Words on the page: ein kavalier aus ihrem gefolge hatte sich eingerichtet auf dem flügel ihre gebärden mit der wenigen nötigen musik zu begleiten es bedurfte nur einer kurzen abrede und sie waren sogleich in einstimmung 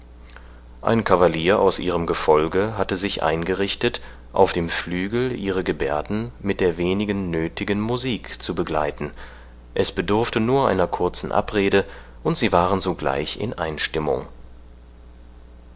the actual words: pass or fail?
pass